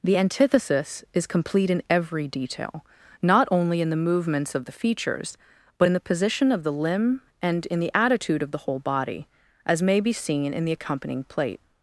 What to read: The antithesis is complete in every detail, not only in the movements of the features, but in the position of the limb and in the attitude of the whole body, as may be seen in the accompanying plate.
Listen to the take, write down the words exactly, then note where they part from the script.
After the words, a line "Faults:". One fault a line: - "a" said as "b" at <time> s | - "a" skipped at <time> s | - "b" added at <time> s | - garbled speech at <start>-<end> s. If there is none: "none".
The antithesis is complete in every detail, not only in the movements of the features, but in the position of the limb and in the attitude of the whole body, as may be seen in the accompanying plate.
Faults:
none